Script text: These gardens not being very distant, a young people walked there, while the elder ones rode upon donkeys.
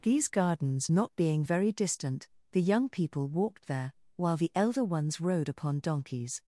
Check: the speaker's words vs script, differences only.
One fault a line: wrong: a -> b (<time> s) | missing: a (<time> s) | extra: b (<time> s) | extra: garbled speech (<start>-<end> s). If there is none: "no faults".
wrong: a -> the (2.5 s)